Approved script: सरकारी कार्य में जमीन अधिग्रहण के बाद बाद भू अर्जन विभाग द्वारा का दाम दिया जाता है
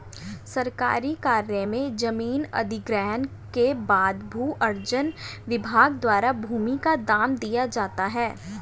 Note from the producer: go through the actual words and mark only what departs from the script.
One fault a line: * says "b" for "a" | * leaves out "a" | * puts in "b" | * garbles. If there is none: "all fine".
* leaves out "बाद"
* puts in "भूमि"